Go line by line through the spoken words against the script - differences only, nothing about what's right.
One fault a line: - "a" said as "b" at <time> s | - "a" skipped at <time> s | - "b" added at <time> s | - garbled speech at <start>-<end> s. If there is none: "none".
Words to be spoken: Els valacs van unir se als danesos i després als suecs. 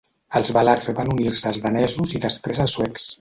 none